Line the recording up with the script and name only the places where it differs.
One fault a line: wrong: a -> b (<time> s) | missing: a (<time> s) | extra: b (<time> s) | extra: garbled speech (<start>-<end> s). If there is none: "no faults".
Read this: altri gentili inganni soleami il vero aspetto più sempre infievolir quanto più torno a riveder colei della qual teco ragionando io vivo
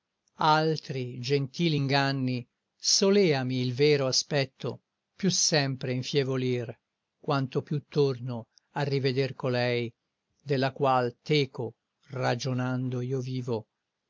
no faults